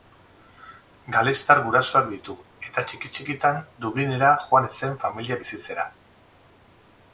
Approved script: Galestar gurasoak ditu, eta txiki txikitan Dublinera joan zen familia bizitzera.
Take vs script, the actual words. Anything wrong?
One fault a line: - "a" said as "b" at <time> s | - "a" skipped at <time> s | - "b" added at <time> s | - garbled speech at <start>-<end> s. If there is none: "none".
none